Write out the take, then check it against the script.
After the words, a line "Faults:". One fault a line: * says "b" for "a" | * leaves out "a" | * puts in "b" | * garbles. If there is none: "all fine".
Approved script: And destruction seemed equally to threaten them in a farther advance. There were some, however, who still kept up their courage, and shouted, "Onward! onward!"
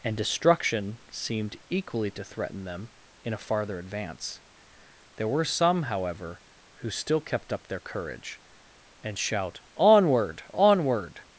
And destruction seemed equally to threaten them in a farther advance. There were some, however, who still kept up their courage, and shout, "Onward! onward!"
Faults:
* says "shout" for "shouted"